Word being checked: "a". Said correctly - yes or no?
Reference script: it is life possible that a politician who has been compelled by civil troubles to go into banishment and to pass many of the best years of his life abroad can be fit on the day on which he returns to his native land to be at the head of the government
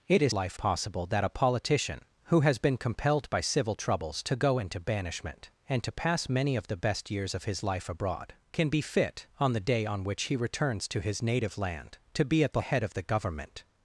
yes